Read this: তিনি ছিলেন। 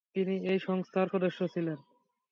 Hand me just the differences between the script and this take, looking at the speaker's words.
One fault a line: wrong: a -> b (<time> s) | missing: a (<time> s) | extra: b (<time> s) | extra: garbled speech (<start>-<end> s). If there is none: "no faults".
extra: এই সংস্থার সদস্য (0.5 s)